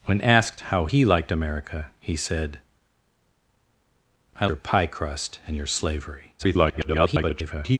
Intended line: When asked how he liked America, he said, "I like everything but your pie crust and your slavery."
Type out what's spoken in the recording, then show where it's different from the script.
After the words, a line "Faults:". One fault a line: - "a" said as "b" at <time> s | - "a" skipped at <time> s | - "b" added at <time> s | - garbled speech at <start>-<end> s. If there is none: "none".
When asked how he liked America, he said, "I your pie crust and your slavery." [garbled]
Faults:
- "like everything but" skipped at 4.5 s
- garbled speech at 6.4-7.8 s